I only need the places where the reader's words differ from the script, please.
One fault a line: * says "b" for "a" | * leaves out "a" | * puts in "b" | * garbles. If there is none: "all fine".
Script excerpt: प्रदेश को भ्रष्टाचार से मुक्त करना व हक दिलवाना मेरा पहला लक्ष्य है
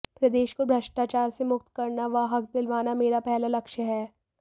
all fine